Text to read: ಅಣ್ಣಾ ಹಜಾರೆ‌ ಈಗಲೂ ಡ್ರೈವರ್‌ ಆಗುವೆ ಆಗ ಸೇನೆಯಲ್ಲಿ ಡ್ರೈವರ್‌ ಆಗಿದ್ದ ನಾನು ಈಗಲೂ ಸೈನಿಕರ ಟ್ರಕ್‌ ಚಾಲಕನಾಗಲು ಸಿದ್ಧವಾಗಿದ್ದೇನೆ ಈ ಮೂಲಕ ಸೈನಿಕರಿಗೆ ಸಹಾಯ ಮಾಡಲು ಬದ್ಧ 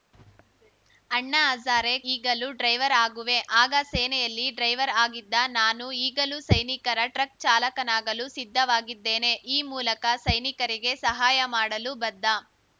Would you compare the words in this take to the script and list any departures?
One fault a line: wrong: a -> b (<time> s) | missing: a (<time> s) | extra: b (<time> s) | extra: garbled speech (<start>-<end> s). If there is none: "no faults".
no faults